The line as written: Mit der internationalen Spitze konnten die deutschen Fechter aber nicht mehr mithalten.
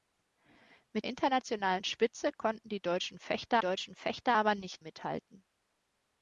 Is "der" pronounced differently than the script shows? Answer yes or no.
yes